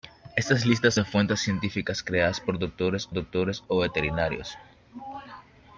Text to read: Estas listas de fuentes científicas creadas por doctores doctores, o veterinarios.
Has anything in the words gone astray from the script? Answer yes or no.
no